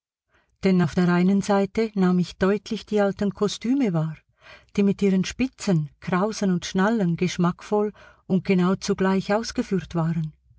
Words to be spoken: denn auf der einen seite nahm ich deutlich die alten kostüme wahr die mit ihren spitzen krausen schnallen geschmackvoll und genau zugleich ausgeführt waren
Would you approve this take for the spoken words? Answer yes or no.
no